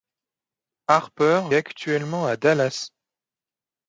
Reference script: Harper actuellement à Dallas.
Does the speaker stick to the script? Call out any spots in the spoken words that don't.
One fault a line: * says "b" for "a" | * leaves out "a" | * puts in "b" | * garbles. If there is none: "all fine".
all fine